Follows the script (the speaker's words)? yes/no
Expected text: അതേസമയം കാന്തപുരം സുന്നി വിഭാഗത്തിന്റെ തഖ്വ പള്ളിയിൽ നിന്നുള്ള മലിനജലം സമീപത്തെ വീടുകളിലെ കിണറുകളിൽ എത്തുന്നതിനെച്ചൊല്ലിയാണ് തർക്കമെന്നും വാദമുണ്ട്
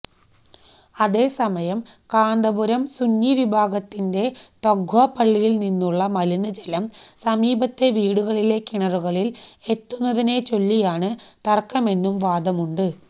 yes